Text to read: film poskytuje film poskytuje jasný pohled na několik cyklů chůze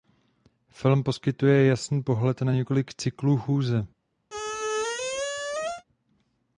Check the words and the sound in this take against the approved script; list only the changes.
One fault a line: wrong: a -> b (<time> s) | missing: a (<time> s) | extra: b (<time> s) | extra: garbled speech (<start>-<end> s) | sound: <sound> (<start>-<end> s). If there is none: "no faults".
missing: film poskytuje (1.6 s)
sound: squeak (4.3-5.8 s)